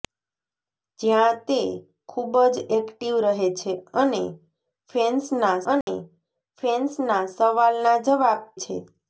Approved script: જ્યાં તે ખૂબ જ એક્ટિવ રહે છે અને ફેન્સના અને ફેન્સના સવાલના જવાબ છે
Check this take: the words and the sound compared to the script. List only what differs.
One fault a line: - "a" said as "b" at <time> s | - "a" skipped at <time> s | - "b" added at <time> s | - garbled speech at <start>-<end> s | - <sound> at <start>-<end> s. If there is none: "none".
- dropout at 5.8-5.9 s